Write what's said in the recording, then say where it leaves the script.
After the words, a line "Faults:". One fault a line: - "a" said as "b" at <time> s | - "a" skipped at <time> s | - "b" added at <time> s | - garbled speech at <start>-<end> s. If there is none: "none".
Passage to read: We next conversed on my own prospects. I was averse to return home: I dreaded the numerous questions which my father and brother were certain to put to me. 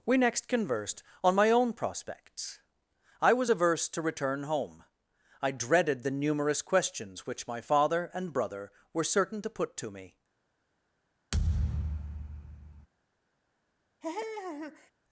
We next conversed on my own prospects. I was averse to return home: I dreaded the numerous questions which my father and brother were certain to put to me.
Faults:
none